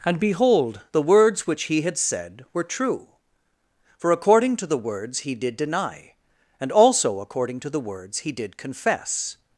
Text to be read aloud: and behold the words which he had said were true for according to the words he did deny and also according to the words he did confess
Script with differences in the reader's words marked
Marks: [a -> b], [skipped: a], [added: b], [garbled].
and behold the words which he had said were true for according to the words he did deny and also according to the words he did confess